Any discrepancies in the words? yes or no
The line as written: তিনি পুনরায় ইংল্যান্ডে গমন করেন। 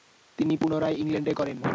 yes